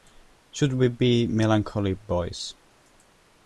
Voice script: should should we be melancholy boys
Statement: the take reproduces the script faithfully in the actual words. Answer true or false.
false